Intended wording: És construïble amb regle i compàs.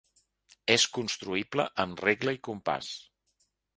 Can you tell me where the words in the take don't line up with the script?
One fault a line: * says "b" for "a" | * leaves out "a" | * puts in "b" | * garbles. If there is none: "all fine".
all fine